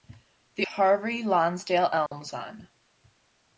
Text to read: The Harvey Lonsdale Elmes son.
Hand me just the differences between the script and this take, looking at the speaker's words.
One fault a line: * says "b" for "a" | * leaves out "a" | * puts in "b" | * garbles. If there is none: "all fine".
all fine